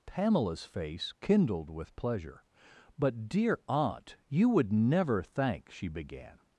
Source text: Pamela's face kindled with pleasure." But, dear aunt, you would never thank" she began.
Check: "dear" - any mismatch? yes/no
no